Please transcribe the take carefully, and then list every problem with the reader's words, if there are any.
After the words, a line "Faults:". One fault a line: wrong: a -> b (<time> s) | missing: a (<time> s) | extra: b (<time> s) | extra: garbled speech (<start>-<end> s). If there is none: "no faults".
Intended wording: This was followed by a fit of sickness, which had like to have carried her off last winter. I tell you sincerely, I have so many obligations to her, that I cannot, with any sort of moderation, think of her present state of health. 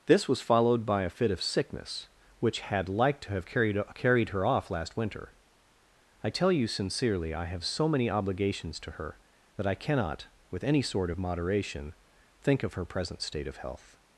This was followed by a fit of sickness, which had like to have carried carried her off last winter. I tell you sincerely, I have so many obligations to her, that I cannot, with any sort of moderation, think of her present state of health.
Faults:
extra: carried (3.9 s)